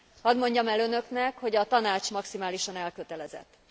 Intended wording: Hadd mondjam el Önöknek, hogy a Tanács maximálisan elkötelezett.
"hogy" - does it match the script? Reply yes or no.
yes